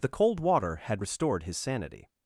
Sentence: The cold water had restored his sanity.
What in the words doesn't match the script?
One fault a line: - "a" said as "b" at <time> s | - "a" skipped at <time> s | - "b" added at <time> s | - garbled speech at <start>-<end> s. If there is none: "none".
none